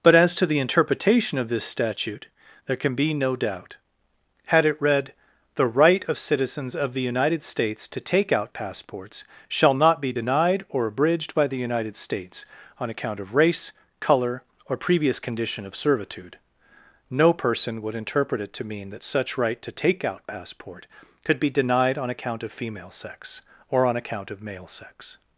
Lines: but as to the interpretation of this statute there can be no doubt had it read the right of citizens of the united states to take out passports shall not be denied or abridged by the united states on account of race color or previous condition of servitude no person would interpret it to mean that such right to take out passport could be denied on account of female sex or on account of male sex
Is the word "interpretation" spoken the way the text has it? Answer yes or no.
yes